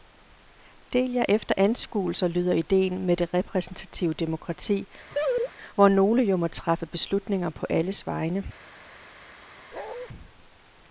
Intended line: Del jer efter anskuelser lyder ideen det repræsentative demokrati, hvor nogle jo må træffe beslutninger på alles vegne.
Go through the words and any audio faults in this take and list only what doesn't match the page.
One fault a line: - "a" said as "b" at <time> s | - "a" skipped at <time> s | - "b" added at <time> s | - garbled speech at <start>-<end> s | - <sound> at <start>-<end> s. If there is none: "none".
- "med" added at 3.0 s
- laugh at 5.1-5.5 s
- bark at 9.7-10.1 s